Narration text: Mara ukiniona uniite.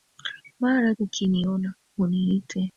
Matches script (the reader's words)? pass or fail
pass